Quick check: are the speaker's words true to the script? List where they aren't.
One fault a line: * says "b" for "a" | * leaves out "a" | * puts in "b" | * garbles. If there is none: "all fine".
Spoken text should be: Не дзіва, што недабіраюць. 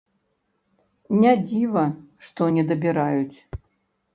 all fine